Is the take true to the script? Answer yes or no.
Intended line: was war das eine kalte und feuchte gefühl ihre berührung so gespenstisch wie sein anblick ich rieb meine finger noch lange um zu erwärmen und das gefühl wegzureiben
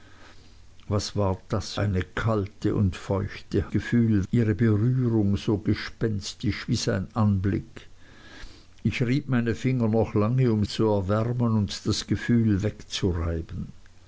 yes